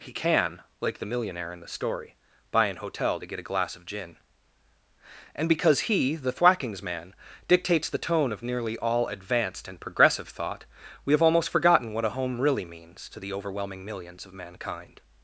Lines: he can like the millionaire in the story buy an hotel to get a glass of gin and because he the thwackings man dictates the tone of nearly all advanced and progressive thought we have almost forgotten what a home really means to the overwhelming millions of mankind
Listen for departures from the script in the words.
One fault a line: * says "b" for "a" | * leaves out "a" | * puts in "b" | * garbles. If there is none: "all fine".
all fine